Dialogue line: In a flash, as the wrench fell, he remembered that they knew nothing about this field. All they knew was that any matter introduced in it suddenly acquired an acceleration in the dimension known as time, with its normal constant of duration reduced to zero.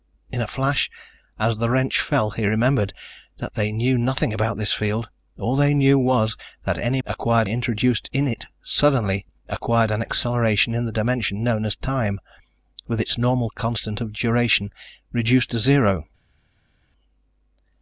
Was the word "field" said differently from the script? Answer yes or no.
no